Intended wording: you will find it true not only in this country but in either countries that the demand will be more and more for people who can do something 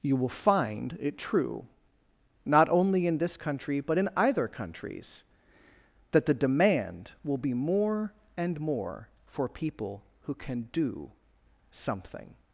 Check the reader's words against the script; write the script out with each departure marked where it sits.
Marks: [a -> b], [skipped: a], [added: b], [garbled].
you will find it true not only in this country but in either countries that the demand will be more and more for people who can do something